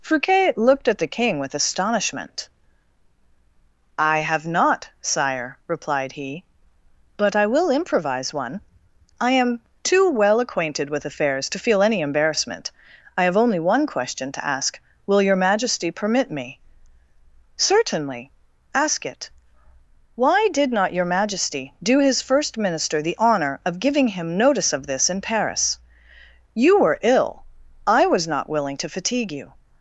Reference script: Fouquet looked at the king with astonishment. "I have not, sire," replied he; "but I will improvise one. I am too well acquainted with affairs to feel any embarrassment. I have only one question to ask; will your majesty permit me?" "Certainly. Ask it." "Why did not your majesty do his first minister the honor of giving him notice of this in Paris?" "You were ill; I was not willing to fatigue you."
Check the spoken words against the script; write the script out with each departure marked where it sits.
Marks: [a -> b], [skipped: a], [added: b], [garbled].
Fouquet looked at the king with astonishment. "I have not, sire," replied he; "but I will improvise one. I am too well acquainted with affairs to feel any embarrassment. I have only one question to ask; will your majesty permit me?" "Certainly. Ask it." "Why did not your majesty do his first minister the honor of giving him notice of this in Paris?" "You were ill; I was not willing to fatigue you."